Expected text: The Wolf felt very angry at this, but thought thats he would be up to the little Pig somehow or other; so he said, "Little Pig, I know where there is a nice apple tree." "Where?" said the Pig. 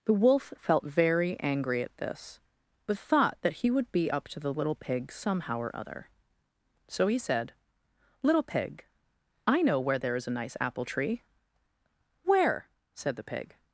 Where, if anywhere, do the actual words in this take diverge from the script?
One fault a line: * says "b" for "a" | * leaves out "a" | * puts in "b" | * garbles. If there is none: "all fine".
* says "that" for "thats"